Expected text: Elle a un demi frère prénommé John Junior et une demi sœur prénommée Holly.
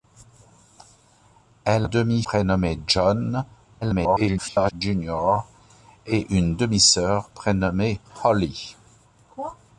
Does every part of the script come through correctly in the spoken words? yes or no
no